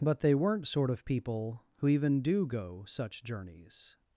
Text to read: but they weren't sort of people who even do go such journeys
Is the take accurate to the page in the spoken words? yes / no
yes